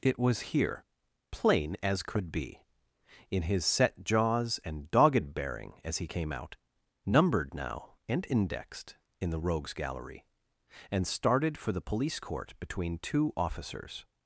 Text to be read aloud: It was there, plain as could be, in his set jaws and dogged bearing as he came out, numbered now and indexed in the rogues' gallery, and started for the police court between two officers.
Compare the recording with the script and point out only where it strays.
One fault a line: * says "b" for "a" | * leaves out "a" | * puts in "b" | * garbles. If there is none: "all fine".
* says "here" for "there"